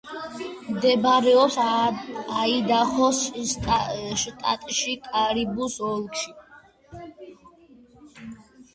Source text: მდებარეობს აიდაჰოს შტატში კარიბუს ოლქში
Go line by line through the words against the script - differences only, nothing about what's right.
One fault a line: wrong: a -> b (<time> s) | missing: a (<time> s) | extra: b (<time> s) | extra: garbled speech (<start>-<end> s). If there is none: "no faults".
no faults